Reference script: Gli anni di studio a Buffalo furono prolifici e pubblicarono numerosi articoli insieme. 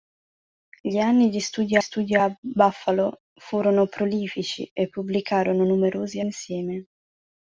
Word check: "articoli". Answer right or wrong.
wrong